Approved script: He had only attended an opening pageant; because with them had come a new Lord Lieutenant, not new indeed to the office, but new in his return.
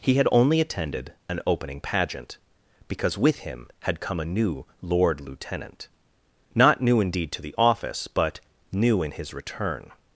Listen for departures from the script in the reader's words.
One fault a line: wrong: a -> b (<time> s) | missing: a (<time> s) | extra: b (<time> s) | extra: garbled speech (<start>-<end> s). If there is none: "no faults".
wrong: them -> him (3.4 s)